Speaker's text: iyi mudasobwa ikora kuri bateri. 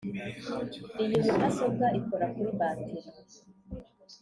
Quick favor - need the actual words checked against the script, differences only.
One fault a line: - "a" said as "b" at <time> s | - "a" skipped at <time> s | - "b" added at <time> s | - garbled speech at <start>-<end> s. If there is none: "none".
none